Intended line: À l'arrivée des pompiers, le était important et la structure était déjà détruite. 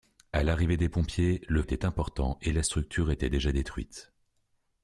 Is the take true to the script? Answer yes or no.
yes